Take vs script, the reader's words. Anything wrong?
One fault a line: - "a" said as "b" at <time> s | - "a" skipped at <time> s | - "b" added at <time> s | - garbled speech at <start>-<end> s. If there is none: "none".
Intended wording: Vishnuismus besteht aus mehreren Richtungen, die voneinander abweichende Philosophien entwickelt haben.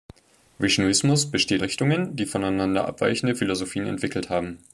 - "aus mehreren" skipped at 1.6 s